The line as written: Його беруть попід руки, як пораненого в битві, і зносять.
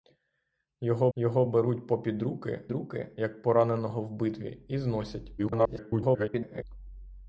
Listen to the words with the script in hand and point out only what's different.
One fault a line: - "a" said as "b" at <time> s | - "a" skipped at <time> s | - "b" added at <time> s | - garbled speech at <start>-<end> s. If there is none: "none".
- "його" added at 1.2 s
- "руки" added at 2.7 s
- garbled speech at 5.4-6.6 s